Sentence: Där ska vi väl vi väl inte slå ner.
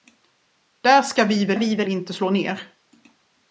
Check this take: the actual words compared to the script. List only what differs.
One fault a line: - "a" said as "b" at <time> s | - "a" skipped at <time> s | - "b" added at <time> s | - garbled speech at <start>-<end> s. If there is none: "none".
none